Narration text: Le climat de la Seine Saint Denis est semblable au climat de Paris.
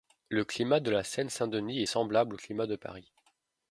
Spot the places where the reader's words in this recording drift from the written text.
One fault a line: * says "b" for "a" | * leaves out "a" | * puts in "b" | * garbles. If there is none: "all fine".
all fine